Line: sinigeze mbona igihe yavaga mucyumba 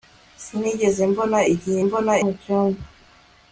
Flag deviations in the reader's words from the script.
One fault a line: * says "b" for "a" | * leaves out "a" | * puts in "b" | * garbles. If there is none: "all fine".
* says "mbona" for "yavaga"